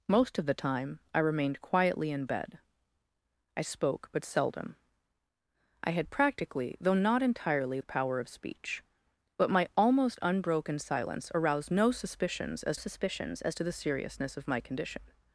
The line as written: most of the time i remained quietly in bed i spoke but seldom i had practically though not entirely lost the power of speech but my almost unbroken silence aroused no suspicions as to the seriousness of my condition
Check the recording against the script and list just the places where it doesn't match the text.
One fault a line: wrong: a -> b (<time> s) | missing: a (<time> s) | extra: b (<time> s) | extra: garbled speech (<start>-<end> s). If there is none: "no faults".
missing: lost (7.8 s)
extra: suspicions as (12.7 s)